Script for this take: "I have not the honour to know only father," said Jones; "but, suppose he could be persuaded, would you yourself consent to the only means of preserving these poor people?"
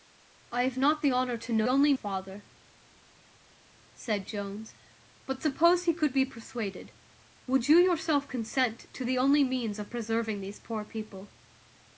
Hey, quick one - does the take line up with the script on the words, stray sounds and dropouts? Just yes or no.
yes